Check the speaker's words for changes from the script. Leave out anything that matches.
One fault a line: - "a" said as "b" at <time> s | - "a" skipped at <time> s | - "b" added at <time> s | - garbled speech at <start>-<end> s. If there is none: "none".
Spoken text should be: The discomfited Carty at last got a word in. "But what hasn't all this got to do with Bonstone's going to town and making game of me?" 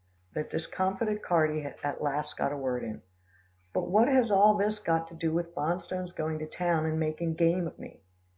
- "hasn't" said as "has" at 4.1 s